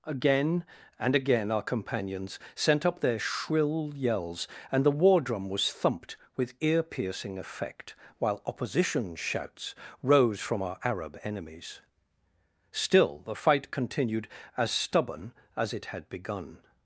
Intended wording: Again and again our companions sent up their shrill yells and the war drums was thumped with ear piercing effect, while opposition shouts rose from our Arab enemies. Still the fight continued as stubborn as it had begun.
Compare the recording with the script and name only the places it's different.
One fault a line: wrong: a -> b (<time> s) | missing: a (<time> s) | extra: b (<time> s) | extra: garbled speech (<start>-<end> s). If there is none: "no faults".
wrong: drums -> drum (5.2 s)